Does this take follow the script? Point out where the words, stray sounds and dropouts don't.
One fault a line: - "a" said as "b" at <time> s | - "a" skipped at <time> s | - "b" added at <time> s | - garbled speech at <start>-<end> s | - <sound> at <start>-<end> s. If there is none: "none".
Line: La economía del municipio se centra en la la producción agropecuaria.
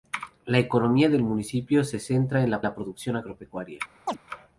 - chirp at 4.1-4.2 s